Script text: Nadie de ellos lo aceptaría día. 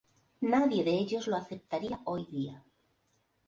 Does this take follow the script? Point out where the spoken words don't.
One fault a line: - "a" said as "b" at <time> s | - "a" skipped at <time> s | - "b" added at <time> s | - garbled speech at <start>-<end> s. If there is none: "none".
- "hoy" added at 2.0 s